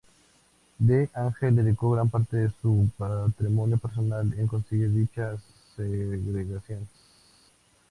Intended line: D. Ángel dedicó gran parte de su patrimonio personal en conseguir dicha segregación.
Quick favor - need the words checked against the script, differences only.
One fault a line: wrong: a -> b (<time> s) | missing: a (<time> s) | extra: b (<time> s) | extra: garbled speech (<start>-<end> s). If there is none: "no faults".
no faults